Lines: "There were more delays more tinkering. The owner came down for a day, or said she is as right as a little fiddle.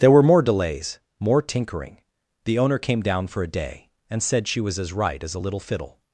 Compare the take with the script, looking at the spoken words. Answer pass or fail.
fail